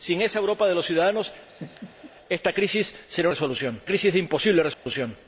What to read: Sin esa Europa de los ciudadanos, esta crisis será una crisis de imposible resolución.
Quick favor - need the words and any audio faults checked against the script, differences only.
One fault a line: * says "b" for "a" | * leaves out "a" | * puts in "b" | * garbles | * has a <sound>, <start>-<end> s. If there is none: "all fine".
* has a laugh, 1.5-2.1 s
* says "resolución" for "una"
* has a dropout, 4.7-4.9 s